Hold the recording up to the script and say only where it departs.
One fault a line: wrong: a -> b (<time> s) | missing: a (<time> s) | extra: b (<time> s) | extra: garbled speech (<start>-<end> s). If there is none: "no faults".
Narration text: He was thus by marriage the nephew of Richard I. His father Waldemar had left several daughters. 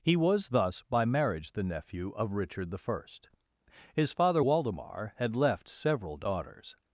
no faults